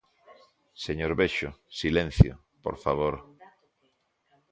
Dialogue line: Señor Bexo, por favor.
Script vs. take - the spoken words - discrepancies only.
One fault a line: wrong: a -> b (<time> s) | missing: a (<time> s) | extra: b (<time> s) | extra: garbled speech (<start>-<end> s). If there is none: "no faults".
extra: silencio (1.7 s)